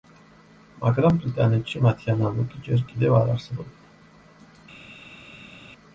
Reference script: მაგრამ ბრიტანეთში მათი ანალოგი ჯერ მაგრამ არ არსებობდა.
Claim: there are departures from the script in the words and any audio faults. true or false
true